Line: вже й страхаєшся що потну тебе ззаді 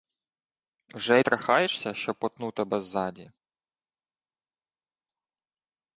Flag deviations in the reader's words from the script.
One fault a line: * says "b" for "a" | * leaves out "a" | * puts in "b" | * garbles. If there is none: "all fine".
all fine